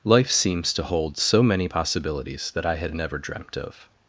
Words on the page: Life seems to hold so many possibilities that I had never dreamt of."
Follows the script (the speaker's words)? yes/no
yes